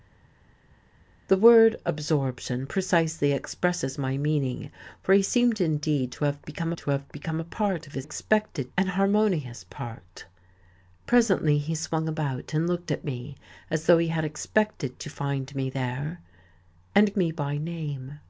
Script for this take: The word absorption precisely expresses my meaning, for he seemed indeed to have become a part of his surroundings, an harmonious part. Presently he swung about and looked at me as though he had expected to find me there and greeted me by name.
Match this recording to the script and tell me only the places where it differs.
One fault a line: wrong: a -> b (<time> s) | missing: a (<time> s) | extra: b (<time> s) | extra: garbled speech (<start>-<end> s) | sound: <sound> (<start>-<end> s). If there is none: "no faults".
extra: to have become (6.8 s)
wrong: surroundings -> expected (8.0 s)
missing: greeted (17.2 s)